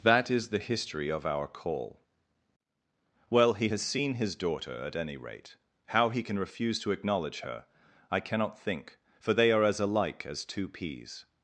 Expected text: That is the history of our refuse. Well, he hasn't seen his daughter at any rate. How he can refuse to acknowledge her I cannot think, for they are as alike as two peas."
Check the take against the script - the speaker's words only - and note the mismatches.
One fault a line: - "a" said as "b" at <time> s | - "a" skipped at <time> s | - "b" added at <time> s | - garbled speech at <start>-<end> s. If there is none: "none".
- "refuse" said as "call" at 1.5 s
- "hasn't" said as "has" at 3.7 s